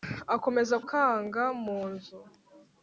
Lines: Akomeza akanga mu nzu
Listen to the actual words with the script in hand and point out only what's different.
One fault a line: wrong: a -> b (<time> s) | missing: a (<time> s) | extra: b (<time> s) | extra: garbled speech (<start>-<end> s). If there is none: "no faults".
no faults